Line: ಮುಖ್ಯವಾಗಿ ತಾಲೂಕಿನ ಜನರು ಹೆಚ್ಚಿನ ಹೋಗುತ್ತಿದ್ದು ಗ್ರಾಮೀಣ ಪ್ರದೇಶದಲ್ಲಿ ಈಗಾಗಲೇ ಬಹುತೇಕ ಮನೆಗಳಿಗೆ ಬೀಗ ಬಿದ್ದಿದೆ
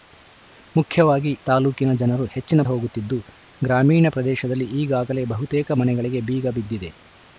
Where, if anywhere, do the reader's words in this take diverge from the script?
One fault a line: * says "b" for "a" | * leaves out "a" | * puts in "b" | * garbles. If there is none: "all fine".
all fine